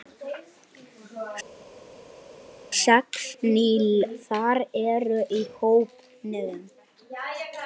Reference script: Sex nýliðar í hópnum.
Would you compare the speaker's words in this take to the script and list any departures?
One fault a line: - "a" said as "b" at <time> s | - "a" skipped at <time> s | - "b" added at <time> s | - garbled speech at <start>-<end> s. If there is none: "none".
- "eru" added at 4.8 s